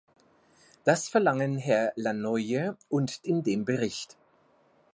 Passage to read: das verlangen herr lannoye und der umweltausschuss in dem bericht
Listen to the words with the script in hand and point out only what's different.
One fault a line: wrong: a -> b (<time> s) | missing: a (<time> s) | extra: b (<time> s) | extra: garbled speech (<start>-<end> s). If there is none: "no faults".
missing: der umweltausschuss (3.3 s)